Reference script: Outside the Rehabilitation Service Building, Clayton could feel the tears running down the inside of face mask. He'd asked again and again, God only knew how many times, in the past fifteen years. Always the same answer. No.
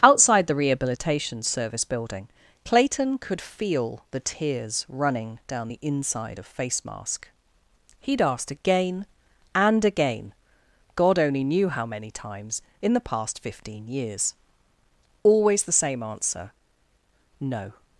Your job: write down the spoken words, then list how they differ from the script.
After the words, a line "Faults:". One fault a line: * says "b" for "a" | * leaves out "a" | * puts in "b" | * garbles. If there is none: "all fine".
Outside the Rehabilitation Service Building, Clayton could feel the tears running down the inside of face mask. He'd asked again and again, God only knew how many times, in the past fifteen years. Always the same answer. No.
Faults:
all fine